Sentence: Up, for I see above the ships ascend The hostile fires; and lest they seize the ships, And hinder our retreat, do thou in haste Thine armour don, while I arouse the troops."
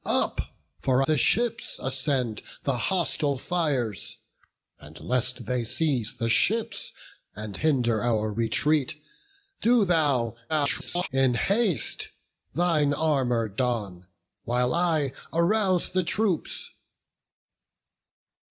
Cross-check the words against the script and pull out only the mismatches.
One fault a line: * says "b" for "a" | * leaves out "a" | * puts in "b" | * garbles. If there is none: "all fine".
* leaves out "I see above"
* garbles